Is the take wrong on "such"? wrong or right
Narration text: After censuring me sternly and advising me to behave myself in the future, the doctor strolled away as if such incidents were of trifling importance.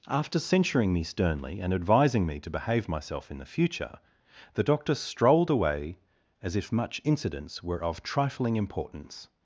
wrong